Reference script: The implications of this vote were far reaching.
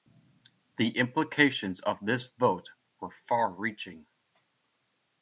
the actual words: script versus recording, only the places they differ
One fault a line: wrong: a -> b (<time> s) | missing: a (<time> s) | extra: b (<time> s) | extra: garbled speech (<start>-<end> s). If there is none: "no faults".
no faults